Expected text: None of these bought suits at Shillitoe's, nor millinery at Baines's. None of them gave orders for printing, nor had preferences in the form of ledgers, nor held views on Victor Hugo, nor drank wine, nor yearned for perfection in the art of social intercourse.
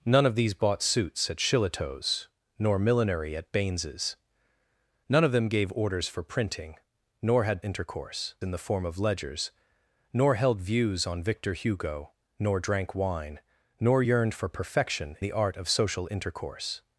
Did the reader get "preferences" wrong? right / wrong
wrong